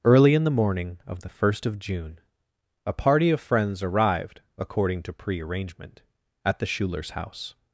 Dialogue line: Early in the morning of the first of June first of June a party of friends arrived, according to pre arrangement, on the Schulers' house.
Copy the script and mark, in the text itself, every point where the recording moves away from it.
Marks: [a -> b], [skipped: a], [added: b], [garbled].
Early in the morning of the first of June [skipped: first of June] a party of friends arrived, according to pre arrangement, [on -> at] the Schulers' house.